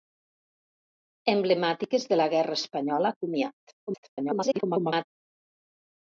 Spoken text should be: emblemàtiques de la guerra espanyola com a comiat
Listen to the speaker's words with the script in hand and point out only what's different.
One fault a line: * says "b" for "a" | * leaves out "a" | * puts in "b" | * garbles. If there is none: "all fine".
* leaves out "com"
* garbles